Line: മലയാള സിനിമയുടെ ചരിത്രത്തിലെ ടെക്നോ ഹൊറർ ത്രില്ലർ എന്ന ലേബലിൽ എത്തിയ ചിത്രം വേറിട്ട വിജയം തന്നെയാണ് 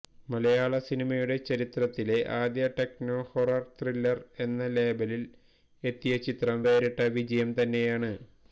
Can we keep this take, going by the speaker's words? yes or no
no